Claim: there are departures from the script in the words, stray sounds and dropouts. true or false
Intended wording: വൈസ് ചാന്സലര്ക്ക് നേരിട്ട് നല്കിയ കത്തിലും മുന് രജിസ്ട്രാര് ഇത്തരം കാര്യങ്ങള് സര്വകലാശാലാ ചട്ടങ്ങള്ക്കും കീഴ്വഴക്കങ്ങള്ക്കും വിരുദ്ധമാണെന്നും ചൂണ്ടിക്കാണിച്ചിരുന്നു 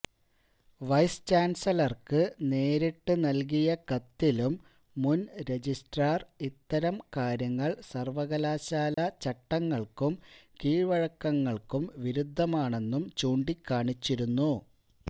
true